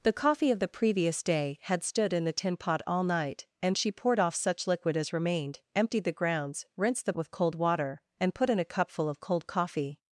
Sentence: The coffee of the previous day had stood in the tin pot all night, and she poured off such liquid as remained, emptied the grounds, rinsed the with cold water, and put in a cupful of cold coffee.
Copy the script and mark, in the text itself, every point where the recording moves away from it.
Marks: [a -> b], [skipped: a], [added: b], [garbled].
The coffee of the previous day had stood in the tin pot all night, and she poured off such liquid as remained, emptied the grounds, rinsed the with cold water, and put in a cupful of cold coffee.